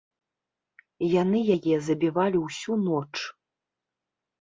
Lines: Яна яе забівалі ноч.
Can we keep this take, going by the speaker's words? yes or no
no